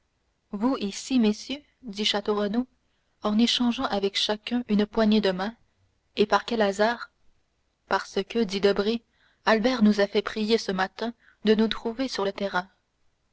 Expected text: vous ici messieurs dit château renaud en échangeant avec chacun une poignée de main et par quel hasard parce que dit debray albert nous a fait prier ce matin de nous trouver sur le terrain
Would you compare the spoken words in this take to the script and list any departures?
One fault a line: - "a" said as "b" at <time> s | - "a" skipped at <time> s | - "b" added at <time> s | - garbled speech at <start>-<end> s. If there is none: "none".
none